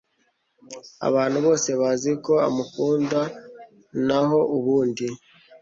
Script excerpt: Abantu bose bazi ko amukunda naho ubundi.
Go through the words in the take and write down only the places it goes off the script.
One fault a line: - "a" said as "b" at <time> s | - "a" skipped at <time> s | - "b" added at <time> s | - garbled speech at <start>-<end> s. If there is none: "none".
none